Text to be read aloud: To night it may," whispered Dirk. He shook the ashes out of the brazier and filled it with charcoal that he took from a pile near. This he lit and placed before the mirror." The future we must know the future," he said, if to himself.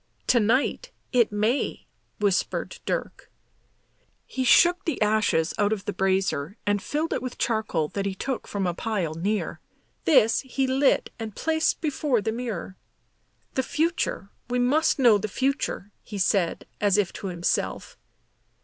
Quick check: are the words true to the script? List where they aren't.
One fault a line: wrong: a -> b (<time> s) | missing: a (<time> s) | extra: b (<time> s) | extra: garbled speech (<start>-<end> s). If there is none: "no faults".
extra: as (16.8 s)